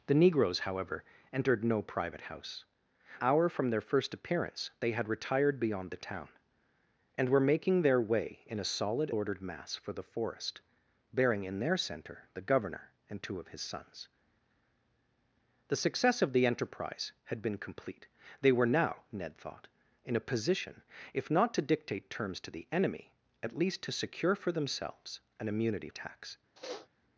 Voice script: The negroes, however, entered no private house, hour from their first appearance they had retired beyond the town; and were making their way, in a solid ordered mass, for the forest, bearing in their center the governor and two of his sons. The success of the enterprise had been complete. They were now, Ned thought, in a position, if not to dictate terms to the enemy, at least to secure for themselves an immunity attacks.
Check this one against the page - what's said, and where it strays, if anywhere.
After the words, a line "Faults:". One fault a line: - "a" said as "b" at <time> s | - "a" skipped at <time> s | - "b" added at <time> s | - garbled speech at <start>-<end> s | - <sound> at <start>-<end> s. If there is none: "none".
The negroes, however, entered no private house, hour from their first appearance they had retired beyond the town; and were making their way, in a solid ordered mass, for the forest, bearing in their center the governor and two of his sons. The success of the enterprise had been complete. They were now, Ned thought, in a position, if not to dictate terms to the enemy, at least to secure for themselves an immunity attacks.
Faults:
- sniff at 26.6-26.9 s